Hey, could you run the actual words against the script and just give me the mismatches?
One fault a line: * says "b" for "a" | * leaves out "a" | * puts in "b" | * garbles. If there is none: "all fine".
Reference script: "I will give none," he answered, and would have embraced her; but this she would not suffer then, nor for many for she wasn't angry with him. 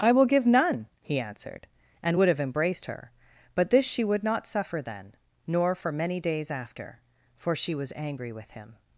* puts in "days after"
* says "was" for "wasn't"